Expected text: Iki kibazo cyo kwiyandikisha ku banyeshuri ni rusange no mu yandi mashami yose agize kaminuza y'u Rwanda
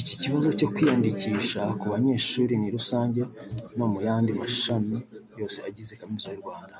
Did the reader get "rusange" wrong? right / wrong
right